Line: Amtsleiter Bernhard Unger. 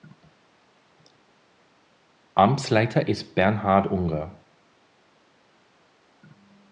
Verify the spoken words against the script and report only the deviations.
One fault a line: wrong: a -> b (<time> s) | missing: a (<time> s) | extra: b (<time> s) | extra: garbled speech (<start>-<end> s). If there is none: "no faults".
extra: ist (3.1 s)